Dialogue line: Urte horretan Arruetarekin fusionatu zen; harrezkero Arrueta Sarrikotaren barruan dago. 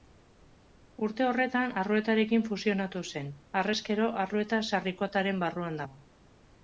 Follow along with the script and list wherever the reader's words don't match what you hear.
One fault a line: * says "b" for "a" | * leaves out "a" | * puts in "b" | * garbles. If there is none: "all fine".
all fine